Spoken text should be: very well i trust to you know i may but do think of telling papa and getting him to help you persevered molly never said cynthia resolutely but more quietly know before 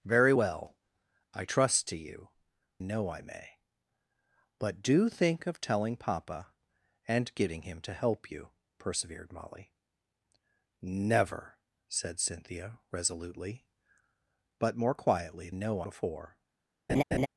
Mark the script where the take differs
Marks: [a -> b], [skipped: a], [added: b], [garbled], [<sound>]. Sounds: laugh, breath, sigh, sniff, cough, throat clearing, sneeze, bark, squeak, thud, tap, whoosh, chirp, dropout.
very well i trust to you know i may but do think of telling papa and getting him to help you persevered molly never said cynthia resolutely but more quietly know before [laugh]